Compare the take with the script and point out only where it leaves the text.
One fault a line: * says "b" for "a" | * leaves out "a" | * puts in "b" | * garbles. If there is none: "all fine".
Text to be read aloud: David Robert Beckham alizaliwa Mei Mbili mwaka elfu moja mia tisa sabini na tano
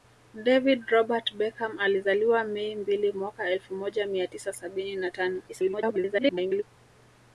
* garbles